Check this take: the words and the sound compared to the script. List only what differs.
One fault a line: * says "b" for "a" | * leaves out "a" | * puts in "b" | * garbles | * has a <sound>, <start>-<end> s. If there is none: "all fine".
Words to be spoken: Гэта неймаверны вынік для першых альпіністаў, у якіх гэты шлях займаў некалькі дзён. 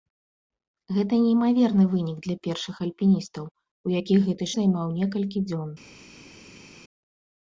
* leaves out "шлях"